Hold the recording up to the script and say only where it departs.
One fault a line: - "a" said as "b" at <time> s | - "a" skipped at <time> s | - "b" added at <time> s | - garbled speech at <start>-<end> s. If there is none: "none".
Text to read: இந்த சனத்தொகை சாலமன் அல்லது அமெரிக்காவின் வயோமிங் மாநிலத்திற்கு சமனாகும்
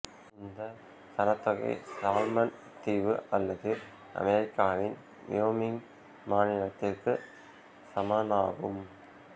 - "தீவு" added at 2.8 s